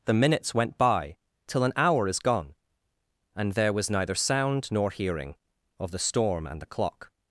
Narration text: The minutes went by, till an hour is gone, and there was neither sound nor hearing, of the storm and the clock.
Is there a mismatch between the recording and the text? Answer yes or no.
no